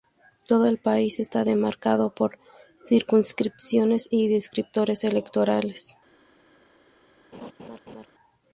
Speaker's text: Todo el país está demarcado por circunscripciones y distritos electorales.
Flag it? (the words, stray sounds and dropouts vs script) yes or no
yes